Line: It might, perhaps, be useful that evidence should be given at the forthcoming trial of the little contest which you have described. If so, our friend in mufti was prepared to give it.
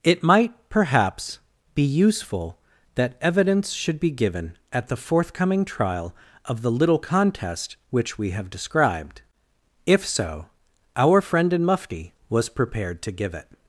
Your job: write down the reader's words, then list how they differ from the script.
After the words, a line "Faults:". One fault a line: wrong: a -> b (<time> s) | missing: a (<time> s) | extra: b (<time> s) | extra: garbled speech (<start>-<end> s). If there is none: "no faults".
It might, perhaps, be useful that evidence should be given at the forthcoming trial of the little contest which we have described. If so, our friend in mufti was prepared to give it.
Faults:
wrong: you -> we (8.2 s)